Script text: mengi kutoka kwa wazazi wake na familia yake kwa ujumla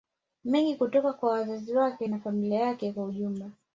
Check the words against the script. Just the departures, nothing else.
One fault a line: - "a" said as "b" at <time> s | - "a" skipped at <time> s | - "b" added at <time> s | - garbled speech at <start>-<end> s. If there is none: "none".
none